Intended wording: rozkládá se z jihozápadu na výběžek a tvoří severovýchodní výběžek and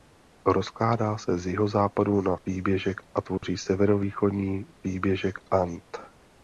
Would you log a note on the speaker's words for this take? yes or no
no